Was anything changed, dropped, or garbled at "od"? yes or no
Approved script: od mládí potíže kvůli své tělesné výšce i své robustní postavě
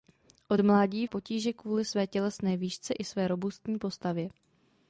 no